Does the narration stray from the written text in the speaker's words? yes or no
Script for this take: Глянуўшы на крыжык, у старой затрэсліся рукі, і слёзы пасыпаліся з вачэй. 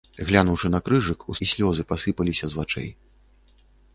yes